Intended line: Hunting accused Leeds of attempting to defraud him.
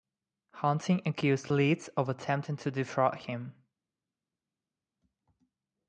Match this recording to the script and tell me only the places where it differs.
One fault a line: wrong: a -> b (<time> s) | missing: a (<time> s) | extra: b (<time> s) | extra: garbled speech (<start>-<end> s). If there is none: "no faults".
no faults